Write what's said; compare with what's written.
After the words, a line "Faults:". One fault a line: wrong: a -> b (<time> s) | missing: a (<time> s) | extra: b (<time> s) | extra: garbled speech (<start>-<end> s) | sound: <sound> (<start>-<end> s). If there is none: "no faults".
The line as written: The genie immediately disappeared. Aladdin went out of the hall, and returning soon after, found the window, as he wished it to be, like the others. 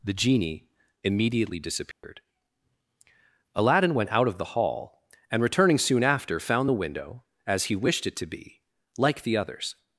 The genie immediately disappeared. Aladdin went out of the hall, and returning soon after, found the window, as he wished it to be, like the others.
Faults:
sound: dropout (1.9-2.0 s)